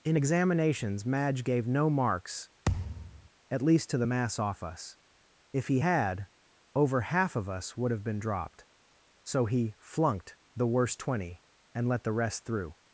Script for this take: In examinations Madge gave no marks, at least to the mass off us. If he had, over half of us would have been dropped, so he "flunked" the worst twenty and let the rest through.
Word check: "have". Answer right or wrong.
right